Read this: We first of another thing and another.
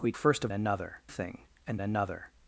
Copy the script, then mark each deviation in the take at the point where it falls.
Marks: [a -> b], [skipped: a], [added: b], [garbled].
We first of another thing and another.